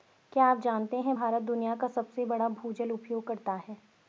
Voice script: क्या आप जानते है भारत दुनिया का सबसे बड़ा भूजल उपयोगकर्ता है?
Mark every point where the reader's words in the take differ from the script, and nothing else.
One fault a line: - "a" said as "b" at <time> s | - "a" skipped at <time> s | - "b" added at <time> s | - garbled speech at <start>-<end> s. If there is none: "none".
none